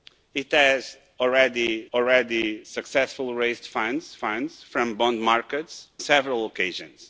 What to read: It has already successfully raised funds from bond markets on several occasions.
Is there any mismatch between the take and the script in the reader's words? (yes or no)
yes